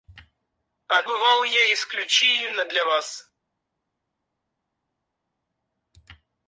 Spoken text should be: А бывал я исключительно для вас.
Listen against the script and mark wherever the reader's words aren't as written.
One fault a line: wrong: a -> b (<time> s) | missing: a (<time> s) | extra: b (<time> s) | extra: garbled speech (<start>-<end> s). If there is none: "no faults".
no faults